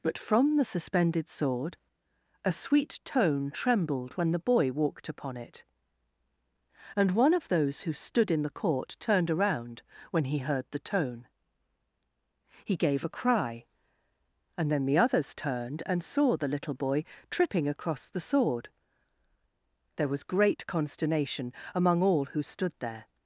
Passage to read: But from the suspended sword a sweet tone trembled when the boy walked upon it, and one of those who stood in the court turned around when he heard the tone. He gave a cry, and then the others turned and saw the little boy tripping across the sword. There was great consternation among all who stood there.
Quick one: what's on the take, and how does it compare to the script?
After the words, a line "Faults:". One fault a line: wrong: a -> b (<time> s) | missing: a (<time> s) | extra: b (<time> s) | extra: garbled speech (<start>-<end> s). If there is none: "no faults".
But from the suspended sword a sweet tone trembled when the boy walked upon it, and one of those who stood in the court turned around when he heard the tone. He gave a cry, and then the others turned and saw the little boy tripping across the sword. There was great consternation among all who stood there.
Faults:
no faults